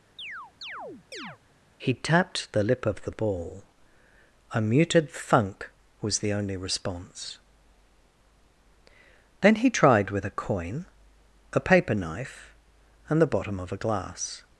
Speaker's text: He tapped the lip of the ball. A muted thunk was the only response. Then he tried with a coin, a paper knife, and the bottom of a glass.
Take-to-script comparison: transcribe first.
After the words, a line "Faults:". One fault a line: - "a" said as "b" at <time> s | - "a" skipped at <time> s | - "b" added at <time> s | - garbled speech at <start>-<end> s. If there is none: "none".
He tapped the lip of the ball. A muted thunk was the only response. Then he tried with a coin, a paper knife, and the bottom of a glass.
Faults:
none